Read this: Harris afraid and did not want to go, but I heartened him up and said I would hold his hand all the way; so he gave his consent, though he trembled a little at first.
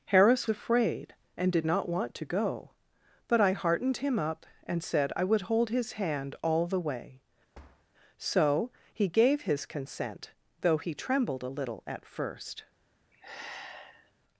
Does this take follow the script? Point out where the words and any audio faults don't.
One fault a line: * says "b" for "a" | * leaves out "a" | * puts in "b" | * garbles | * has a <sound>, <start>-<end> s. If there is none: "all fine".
* has a thud, 7.5-7.8 s
* has a sigh, 13.1-14.1 s